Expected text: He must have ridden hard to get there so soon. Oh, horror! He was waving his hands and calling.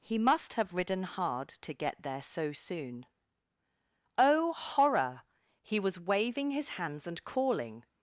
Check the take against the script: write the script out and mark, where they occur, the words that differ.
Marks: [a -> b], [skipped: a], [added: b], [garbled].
He must have ridden hard to get there so soon. Oh, horror! He was waving his hands and calling.